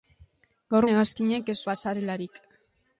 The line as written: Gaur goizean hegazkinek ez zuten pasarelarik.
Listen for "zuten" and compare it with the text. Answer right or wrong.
wrong